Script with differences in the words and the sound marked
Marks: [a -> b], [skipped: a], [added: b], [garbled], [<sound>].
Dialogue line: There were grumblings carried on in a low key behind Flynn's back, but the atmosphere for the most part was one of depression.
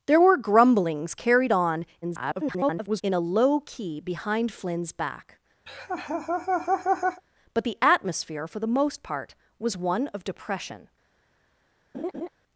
There were grumblings carried on [garbled] in a low key behind Flynn's back, [laugh] but the atmosphere for the most part was one of depression. [laugh]